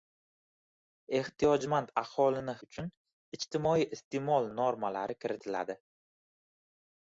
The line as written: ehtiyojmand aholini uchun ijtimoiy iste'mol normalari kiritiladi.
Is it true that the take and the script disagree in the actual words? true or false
false